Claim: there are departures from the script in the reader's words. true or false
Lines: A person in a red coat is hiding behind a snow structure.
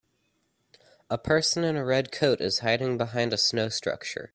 false